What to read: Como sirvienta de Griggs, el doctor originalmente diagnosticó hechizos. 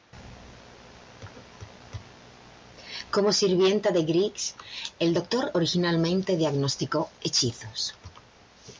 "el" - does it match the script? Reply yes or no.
yes